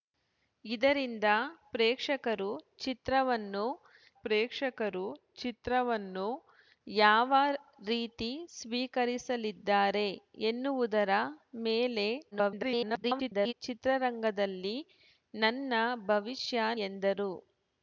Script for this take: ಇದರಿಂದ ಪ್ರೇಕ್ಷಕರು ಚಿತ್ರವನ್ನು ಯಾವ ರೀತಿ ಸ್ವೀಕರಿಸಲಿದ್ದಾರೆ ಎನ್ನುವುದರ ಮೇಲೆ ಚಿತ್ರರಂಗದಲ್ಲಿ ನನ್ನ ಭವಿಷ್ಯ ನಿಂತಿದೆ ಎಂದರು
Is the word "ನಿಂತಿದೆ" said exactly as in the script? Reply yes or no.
no